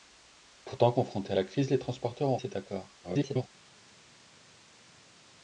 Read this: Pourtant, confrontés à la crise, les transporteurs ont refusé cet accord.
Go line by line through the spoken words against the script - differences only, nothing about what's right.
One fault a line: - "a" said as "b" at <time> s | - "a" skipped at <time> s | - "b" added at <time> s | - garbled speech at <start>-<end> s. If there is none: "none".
- "refusé" skipped at 2.4 s
- garbled speech at 3.0-3.5 s